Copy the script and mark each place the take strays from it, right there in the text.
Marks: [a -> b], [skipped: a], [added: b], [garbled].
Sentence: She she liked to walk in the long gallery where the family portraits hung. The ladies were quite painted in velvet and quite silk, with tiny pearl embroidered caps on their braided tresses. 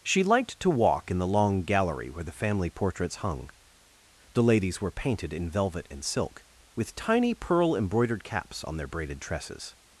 She [skipped: she] liked to walk in the long gallery where the family portraits hung. The ladies were [skipped: quite] painted in velvet and [skipped: quite] silk, with tiny pearl embroidered caps on their braided tresses.